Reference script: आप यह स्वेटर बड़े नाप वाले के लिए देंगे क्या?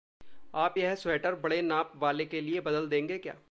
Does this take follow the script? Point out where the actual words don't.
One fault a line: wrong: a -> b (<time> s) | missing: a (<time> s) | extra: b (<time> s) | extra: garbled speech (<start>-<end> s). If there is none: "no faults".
extra: बदल (2.6 s)